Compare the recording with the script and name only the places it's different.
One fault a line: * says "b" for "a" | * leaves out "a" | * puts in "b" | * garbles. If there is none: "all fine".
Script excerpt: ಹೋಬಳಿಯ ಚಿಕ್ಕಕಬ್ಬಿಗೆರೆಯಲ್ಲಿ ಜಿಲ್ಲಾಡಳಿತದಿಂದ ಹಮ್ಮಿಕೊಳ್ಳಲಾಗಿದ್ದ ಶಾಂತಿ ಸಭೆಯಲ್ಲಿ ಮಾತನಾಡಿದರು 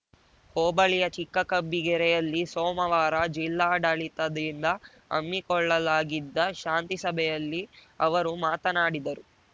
* puts in "ಸೋಮವಾರ"
* puts in "ಅವರು"